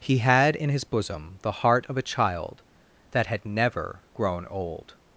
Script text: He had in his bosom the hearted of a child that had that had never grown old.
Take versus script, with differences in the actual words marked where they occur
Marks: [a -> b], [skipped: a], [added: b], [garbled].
He had in his bosom the [hearted -> heart] of a child that had [skipped: that had] never grown old.